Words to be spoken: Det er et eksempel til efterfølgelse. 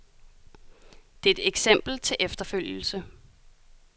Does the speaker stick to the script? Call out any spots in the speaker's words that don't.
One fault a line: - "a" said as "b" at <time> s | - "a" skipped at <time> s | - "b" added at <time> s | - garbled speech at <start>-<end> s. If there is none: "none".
none